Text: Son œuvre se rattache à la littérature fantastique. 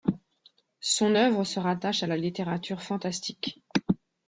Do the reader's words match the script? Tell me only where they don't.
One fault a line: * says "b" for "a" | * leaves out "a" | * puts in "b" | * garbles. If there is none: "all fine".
all fine